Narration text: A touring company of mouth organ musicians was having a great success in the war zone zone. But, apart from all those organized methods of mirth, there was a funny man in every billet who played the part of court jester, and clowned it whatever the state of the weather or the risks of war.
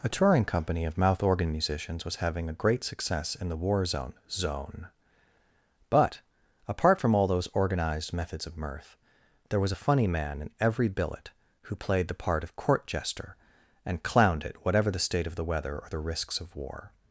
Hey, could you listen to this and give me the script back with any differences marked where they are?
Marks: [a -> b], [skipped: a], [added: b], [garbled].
A touring company of mouth organ musicians was having a great success in the war zone zone. But, apart from all those organized methods of mirth, there was a funny man in every billet who played the part of court jester, and clowned it whatever the state of the weather or the risks of war.